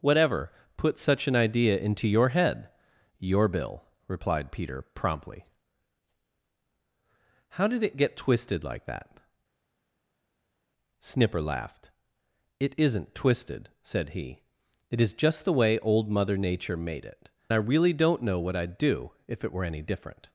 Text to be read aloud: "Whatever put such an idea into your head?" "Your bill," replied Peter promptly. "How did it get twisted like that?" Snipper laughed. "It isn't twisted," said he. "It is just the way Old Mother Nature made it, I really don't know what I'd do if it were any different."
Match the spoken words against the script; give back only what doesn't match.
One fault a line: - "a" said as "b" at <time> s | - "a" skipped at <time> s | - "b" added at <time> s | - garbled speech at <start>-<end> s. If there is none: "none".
none